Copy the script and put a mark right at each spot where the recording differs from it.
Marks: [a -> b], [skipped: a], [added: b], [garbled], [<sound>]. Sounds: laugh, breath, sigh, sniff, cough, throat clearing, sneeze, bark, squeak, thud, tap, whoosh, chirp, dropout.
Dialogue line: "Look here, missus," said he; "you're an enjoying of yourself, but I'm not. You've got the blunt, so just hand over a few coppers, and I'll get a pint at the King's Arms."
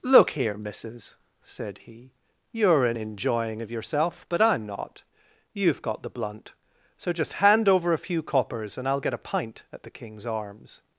"Look here, missus," said he; "you're an enjoying of yourself, but I'm not. You've got the blunt, so just hand over a few coppers, and I'll get a pint at the King's Arms."